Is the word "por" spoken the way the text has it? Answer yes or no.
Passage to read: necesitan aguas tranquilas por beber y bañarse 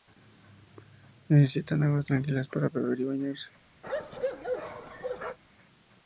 no